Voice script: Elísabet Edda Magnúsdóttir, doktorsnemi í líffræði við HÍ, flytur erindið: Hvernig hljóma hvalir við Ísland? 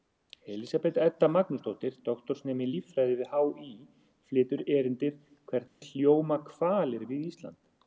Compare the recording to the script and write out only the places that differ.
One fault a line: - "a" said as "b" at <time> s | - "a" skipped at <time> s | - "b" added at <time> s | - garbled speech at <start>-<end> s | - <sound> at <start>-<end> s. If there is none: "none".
- dropout at 5.7-5.8 s